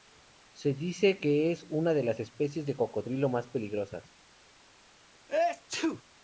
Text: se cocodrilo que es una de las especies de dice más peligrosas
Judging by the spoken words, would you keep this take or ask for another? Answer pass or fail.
fail